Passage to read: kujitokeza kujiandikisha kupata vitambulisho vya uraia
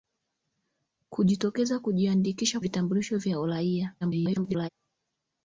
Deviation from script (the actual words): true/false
true